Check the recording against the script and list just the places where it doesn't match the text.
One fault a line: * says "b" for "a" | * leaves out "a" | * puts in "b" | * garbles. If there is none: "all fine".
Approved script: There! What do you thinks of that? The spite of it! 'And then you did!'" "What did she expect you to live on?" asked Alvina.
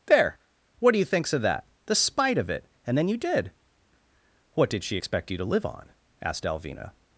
all fine